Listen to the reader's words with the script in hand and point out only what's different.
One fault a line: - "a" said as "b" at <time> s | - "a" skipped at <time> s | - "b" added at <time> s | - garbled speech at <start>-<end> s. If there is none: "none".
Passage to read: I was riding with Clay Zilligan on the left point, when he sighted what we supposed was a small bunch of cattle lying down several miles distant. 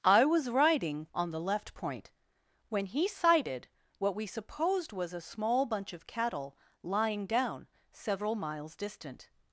- "with Clay Zilligan" skipped at 1.1 s